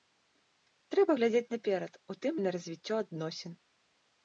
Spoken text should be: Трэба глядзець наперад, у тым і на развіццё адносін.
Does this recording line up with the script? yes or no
yes